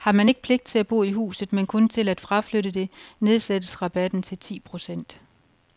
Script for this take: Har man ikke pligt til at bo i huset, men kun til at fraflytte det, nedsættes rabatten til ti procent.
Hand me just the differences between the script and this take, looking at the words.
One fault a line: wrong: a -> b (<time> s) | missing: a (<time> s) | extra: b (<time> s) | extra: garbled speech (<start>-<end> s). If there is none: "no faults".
no faults